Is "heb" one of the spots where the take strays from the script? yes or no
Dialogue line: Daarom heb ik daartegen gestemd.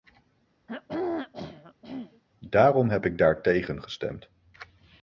no